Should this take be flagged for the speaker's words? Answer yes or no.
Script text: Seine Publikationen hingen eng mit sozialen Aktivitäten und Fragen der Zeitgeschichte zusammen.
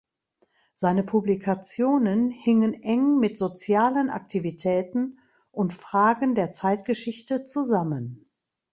no